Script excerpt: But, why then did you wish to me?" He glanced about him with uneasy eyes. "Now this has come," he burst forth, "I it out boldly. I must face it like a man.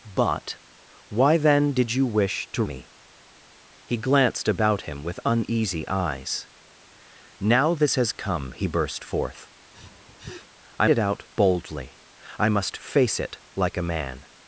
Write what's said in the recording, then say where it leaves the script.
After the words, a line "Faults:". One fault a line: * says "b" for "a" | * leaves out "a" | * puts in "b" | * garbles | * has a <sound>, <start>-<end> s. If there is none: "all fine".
But, why then did you wish to me?" He glanced about him with uneasy eyes. "Now this has come," he burst forth, "I it out boldly. I must face it like a man.
Faults:
* has a sniff, 9.7-10.5 s